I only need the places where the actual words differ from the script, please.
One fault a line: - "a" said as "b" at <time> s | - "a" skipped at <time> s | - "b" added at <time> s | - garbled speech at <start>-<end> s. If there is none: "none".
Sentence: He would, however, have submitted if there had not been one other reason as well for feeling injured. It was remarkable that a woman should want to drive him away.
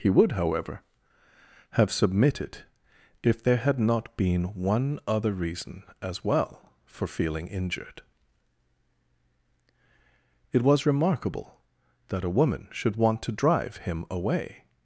none